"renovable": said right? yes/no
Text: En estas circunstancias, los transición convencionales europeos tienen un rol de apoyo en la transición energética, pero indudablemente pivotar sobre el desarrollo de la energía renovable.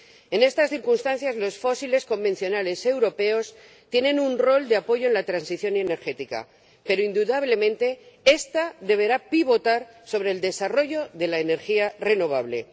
yes